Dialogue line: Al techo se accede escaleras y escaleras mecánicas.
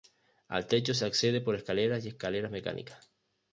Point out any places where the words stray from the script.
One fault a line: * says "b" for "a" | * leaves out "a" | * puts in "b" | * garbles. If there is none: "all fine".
* puts in "por"